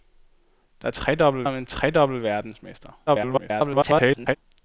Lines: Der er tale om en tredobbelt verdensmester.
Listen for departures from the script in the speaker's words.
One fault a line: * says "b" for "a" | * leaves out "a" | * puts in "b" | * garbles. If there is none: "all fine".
* says "tredobbelt" for "tale"
* garbles